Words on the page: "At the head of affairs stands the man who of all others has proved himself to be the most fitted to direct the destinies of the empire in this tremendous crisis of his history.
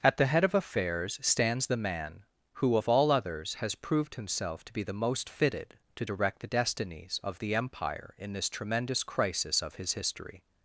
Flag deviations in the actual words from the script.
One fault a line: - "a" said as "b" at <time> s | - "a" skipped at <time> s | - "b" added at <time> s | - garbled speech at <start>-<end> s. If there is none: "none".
none